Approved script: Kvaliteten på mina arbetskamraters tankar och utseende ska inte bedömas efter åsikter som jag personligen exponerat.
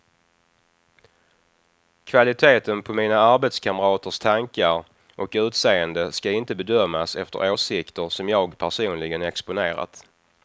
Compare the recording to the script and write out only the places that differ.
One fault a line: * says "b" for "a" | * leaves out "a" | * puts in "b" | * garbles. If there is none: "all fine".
all fine